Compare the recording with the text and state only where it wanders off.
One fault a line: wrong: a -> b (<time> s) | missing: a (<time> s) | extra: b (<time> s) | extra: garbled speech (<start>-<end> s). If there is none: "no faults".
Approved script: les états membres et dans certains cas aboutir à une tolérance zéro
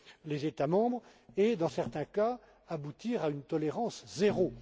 no faults